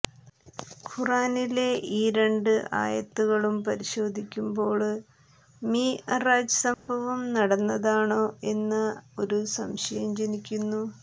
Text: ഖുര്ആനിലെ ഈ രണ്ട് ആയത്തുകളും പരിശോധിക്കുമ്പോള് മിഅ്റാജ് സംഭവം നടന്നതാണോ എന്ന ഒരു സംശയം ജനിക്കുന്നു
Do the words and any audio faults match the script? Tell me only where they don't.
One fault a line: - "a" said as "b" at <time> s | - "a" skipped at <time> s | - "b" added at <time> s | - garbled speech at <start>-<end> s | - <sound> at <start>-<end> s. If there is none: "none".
- dropout at 6.7-6.9 s